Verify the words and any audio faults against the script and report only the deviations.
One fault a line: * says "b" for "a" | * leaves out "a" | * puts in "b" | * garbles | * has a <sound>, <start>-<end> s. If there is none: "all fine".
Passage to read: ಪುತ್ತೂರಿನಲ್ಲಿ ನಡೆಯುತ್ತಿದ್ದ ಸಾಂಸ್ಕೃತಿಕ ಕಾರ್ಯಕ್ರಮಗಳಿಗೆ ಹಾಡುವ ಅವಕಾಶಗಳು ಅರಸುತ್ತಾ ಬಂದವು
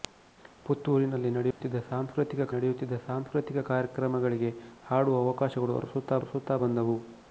* has a dropout, 1.5-1.6 s
* puts in "ನಡೆಯುತ್ತಿದ್ದ ಸಾಂಸ್ಕೃತಿಕ"
* puts in "ಅರಸುತ್ತಾ"